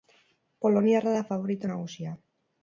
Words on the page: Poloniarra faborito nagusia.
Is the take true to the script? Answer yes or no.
no